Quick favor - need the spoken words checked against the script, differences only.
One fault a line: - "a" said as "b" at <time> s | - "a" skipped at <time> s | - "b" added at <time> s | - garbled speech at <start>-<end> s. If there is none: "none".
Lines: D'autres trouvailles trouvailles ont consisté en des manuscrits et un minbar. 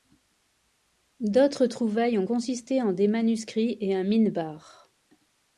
- "trouvailles" skipped at 2.2 s